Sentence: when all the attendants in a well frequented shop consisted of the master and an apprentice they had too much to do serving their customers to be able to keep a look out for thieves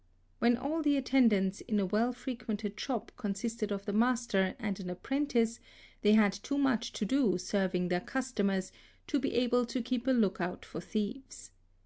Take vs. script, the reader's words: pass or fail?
pass